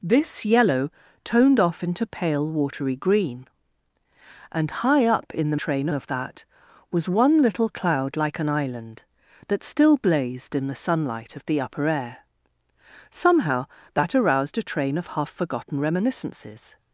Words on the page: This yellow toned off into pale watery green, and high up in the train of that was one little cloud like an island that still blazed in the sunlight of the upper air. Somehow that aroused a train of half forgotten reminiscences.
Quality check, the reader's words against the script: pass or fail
pass